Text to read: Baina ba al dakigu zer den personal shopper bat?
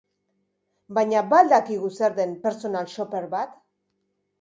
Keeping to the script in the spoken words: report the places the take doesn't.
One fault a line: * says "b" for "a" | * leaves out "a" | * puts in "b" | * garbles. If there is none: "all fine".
all fine